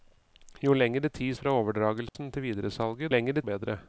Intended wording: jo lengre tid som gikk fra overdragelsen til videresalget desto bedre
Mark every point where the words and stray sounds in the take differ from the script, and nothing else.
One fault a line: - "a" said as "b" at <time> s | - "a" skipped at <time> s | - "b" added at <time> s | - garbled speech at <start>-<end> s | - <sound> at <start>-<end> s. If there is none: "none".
- "som gikk" skipped at 1.4 s
- dropout at 2.1-2.2 s
- "desto" said as "lengre" at 3.1 s